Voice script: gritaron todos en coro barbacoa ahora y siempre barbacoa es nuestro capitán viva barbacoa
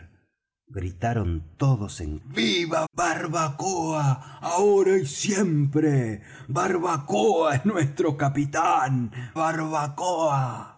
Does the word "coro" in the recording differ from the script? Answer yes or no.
yes